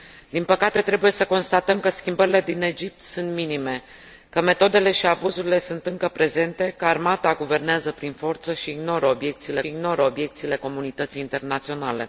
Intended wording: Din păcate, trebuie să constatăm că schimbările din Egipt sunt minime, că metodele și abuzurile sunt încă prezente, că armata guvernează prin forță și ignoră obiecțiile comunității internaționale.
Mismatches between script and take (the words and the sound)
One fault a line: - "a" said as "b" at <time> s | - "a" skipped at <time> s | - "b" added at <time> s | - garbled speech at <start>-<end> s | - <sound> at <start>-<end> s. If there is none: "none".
- "ignoră obiecțiile" added at 9.7 s